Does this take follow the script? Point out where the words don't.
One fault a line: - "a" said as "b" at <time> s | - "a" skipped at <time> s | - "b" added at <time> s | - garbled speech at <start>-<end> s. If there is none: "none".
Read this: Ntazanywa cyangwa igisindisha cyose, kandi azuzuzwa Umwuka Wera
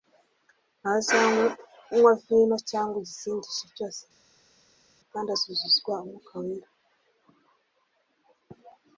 - "vino" added at 2.2 s